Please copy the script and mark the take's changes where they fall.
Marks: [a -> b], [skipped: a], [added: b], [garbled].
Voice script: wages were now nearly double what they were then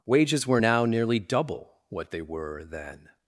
wages were now nearly double what they were then